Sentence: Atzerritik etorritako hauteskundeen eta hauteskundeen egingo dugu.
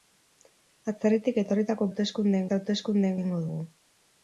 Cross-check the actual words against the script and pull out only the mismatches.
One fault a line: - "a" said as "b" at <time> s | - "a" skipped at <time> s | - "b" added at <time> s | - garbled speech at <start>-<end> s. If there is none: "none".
none